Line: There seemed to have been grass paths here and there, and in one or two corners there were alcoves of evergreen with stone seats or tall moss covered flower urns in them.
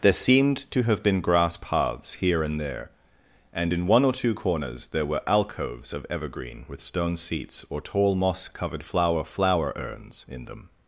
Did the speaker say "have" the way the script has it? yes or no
yes